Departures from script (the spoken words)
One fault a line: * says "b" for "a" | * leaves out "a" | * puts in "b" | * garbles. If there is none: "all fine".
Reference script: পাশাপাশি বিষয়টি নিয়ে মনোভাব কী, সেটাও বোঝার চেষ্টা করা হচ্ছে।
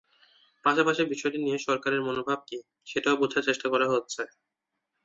* puts in "সরকারের"